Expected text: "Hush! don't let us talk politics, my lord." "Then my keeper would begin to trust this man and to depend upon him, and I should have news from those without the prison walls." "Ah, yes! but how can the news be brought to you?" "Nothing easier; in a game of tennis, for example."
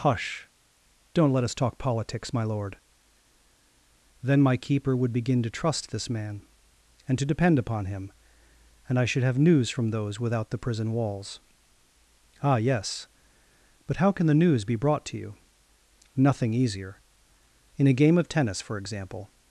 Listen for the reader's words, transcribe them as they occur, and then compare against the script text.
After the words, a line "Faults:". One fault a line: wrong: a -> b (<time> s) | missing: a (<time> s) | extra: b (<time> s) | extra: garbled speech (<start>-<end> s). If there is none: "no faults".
"Hush! don't let us talk politics, my lord." "Then my keeper would begin to trust this man and to depend upon him, and I should have news from those without the prison walls." "Ah, yes! but how can the news be brought to you?" "Nothing easier; in a game of tennis, for example."
Faults:
no faults